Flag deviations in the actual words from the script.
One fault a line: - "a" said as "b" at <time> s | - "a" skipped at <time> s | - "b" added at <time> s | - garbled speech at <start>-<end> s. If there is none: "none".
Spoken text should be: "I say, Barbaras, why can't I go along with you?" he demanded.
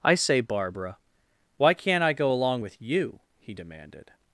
- "Barbaras" said as "Barbara" at 0.4 s